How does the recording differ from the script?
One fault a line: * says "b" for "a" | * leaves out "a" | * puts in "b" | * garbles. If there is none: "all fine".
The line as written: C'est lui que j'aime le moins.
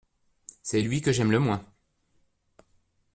all fine